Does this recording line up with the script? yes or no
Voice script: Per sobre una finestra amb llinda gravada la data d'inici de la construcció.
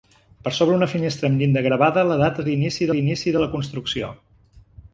no